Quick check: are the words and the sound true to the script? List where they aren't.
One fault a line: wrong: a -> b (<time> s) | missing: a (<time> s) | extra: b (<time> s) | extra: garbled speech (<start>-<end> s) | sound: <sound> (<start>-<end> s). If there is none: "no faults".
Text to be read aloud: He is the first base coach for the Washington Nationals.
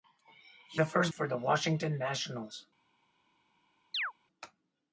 missing: is (0.8 s)
missing: base coach (1.1 s)
sound: chirp (3.9-4.1 s)